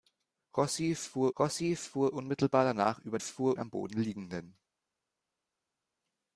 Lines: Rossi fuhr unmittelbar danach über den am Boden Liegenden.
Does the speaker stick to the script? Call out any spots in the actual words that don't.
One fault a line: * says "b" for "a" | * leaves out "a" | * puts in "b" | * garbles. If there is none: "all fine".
* puts in "rossi fuhr"
* says "fuhr" for "den"